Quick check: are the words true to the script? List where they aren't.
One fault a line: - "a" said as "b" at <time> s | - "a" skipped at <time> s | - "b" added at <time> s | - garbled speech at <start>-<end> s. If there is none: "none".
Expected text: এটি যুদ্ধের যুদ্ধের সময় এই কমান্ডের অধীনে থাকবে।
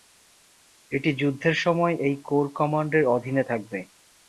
- "যুদ্ধের" skipped at 1.6 s
- "কোর" added at 2.2 s